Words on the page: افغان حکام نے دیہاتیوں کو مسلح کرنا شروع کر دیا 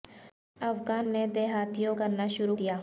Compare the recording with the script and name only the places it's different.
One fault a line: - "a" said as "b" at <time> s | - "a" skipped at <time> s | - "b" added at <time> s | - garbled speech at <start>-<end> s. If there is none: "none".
- "حکام" skipped at 1.1 s
- "کو مسلح" skipped at 2.0 s
- "کر" skipped at 2.6 s